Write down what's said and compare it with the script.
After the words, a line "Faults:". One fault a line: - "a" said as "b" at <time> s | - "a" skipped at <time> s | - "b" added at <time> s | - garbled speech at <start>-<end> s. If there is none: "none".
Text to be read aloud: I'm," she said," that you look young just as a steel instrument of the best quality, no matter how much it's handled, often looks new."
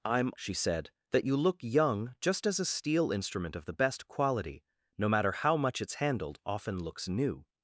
I'm," she said," that you look young just as a steel instrument of the best quality, no matter how much it's handled, often looks new."
Faults:
none